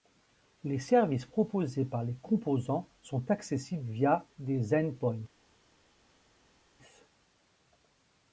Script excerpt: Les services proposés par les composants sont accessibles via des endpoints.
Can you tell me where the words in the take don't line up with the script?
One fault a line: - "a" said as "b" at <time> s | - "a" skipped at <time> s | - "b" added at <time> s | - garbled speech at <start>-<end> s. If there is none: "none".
none